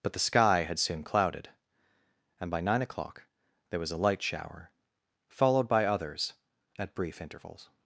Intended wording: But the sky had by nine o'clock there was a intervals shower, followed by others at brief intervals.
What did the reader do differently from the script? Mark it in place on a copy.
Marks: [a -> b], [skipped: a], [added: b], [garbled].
But the sky had [added: soon clouded and] by nine o'clock there was a [intervals -> light] shower, followed by others at brief intervals.